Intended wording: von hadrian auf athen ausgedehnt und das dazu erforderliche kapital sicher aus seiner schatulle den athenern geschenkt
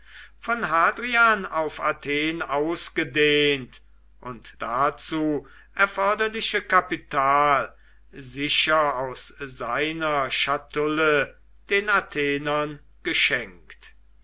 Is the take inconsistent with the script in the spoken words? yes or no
yes